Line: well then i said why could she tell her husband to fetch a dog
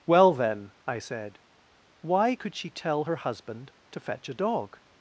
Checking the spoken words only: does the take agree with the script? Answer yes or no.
yes